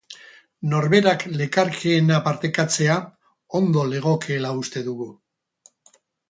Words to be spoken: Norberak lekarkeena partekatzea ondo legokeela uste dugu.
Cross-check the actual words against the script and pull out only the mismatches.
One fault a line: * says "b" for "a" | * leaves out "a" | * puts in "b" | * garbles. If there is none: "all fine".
all fine